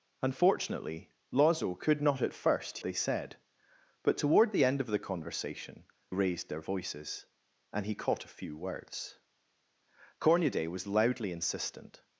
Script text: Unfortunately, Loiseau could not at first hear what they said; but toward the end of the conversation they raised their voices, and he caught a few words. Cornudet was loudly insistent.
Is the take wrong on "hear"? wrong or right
wrong